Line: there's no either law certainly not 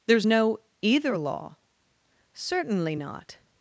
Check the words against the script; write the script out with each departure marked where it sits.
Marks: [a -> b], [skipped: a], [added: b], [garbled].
there's no either law certainly not